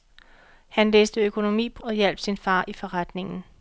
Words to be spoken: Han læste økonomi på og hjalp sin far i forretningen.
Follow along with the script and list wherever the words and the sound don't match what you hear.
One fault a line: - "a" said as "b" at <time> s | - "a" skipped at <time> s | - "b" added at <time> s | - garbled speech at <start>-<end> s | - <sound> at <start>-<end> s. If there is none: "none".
none